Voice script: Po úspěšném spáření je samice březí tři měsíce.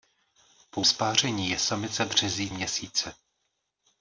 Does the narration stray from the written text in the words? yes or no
yes